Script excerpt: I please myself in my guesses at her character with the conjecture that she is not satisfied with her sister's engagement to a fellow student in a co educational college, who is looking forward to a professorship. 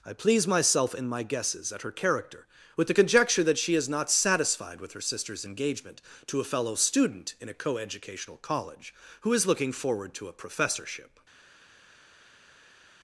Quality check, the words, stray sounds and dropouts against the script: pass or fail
pass